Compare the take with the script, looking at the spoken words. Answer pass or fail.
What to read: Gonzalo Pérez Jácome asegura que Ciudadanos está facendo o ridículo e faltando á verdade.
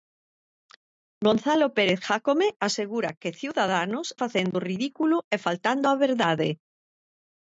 fail